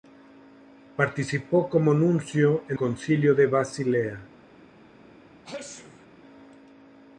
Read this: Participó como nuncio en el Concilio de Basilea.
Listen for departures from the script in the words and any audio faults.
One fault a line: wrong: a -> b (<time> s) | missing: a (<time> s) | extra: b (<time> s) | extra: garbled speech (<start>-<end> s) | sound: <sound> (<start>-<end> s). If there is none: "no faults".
missing: el (2.8 s)
sound: sneeze (5.4-6.1 s)